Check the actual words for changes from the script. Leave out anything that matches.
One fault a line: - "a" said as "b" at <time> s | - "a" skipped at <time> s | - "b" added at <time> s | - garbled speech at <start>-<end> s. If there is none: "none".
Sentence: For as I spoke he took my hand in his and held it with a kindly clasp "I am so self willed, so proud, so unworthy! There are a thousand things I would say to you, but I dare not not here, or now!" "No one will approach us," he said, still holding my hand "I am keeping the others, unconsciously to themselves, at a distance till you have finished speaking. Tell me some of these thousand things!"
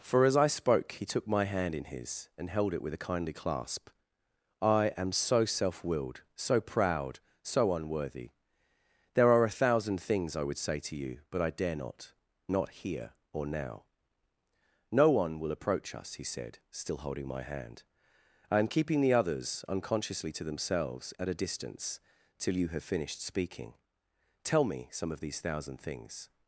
none